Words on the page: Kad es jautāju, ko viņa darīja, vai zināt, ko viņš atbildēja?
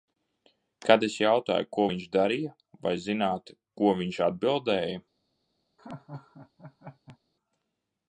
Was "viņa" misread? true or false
true